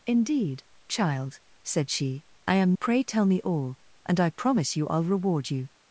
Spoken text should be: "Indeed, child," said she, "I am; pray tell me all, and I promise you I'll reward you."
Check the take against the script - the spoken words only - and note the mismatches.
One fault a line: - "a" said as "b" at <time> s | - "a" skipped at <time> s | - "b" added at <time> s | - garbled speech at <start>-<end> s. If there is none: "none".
none